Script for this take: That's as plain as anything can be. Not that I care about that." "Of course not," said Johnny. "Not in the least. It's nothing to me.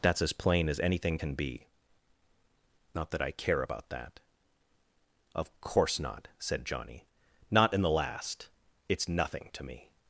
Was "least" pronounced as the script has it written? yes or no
no